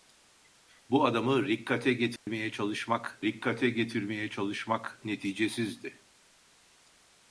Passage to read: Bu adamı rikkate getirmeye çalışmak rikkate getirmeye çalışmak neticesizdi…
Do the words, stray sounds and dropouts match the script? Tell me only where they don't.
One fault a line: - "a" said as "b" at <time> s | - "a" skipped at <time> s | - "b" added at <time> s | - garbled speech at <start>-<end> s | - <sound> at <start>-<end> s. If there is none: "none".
- dropout at 2.2-2.3 s